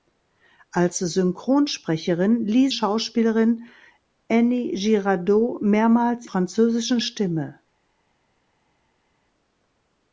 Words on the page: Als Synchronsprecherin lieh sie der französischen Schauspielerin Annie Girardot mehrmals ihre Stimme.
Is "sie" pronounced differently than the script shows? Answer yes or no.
yes